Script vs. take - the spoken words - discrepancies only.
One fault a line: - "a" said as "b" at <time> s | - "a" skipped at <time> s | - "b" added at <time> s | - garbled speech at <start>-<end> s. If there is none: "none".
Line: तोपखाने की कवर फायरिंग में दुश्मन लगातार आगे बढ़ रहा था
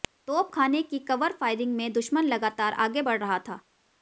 none